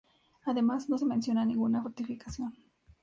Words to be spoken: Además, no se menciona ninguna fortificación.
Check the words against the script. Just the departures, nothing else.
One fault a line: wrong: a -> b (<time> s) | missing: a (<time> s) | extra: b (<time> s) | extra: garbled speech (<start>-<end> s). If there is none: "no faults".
no faults